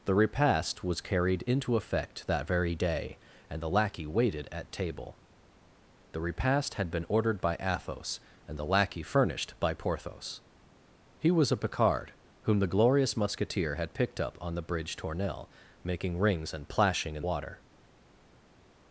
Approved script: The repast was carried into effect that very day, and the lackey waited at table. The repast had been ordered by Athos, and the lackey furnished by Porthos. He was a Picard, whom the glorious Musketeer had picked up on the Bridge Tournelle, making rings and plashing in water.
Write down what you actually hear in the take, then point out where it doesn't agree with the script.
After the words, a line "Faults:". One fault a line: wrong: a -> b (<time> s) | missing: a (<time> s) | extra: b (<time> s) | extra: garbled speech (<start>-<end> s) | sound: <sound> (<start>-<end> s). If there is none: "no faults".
The repast was carried into effect that very day, and the lackey waited at table. The repast had been ordered by Athos, and the lackey furnished by Porthos. He was a Picard, whom the glorious Musketeer had picked up on the Bridge Tournelle, making rings and plashing in water.
Faults:
no faults